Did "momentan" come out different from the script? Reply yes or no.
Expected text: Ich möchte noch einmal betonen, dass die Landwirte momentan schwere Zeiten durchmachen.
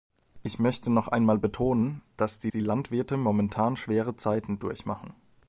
no